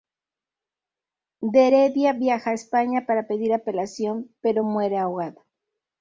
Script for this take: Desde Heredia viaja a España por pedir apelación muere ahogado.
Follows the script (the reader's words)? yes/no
no